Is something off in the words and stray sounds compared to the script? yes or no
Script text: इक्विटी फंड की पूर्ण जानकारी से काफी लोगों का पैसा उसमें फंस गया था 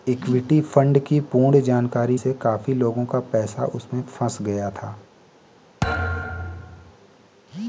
yes